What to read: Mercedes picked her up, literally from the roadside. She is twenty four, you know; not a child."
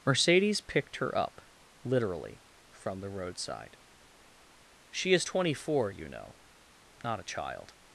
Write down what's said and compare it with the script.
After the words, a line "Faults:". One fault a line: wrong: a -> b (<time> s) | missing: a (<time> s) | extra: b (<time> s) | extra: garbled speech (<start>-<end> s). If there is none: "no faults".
Mercedes picked her up, literally from the roadside. She is twenty four, you know; not a child."
Faults:
no faults